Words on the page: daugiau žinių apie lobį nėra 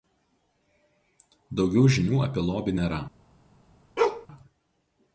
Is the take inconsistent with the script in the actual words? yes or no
no